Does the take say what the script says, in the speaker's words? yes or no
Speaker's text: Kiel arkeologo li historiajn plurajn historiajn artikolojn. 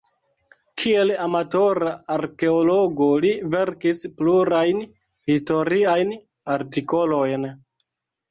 no